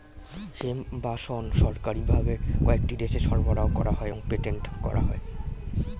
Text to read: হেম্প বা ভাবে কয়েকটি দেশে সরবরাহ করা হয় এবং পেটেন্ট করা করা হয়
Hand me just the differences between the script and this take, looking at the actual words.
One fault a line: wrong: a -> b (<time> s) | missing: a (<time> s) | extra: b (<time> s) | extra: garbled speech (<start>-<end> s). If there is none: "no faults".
extra: শণ সরকারি (1.2 s)
missing: করা (5.0 s)